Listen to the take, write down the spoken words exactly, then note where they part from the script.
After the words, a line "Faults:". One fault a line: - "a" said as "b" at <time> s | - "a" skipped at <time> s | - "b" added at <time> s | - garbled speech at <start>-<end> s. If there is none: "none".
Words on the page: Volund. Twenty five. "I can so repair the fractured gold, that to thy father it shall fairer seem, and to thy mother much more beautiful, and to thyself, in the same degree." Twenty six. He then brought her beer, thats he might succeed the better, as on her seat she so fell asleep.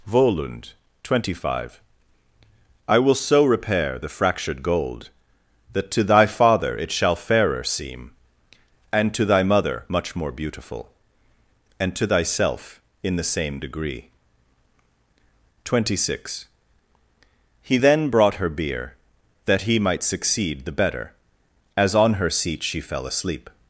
Volund. Twenty five. "I will so repair the fractured gold, that to thy father it shall fairer seem, and to thy mother much more beautiful, and to thyself, in the same degree." Twenty six. He then brought her beer, that he might succeed the better, as on her seat she fell asleep.
Faults:
- "can" said as "will" at 3.0 s
- "thats" said as "that" at 19.5 s
- "so" skipped at 22.8 s